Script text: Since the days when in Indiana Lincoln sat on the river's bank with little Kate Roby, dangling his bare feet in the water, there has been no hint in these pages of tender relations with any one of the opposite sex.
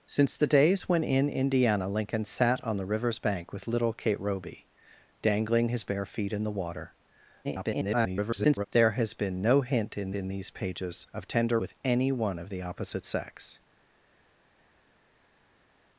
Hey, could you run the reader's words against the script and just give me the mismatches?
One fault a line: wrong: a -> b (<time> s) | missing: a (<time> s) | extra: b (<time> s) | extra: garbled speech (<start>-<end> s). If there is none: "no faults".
extra: garbled speech (7.4-8.7 s)
extra: in (10.1 s)
missing: relations (11.6 s)